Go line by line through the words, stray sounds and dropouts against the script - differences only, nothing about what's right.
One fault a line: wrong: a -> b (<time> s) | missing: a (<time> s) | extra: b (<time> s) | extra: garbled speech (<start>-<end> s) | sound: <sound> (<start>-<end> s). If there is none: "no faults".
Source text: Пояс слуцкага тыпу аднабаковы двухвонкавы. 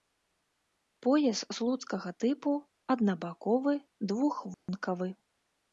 sound: dropout (4.5-4.7 s)